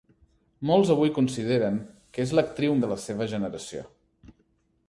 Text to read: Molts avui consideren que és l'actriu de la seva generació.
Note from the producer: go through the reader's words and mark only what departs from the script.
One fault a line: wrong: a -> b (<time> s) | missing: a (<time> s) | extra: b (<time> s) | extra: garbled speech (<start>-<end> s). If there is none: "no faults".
no faults